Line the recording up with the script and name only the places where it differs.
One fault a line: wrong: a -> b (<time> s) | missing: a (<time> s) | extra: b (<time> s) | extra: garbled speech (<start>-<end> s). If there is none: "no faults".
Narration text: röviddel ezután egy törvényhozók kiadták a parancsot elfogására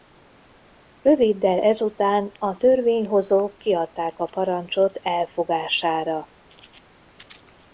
wrong: egy -> a (2.4 s)